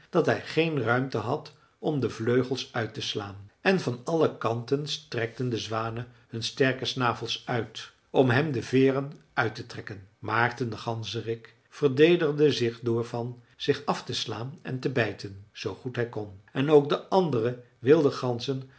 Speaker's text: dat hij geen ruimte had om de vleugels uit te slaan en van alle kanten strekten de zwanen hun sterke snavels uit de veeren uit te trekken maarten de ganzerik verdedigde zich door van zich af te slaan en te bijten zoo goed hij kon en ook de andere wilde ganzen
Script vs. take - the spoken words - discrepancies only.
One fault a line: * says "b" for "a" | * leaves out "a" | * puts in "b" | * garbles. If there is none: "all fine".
* puts in "om hem"